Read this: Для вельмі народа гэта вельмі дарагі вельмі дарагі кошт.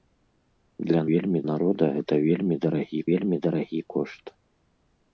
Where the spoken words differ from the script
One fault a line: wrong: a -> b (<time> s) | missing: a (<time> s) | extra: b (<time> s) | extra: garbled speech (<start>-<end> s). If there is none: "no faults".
no faults